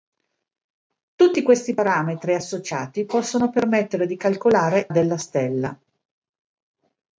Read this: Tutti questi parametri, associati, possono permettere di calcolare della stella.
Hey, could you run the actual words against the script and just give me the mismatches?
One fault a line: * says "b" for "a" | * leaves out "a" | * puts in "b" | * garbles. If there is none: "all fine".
all fine